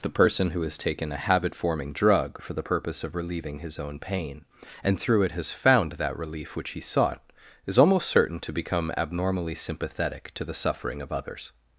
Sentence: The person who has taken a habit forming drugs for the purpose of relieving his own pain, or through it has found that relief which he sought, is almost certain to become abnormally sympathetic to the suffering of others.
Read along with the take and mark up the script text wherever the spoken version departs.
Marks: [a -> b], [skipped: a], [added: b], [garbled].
The person who has taken a habit forming [drugs -> drug] for the purpose of relieving his own pain, [or -> and] through it has found that relief which he sought, is almost certain to become abnormally sympathetic to the suffering of others.